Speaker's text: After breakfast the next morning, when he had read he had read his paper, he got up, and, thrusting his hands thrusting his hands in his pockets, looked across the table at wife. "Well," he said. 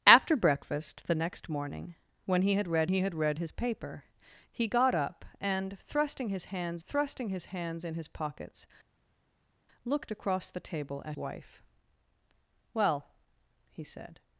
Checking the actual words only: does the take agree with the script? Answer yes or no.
yes